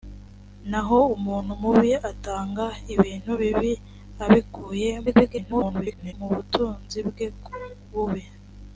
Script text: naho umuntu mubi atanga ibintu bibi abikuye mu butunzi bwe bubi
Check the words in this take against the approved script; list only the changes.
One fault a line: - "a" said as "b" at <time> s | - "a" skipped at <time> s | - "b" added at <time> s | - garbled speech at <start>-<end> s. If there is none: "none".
- garbled speech at 5.1-6.1 s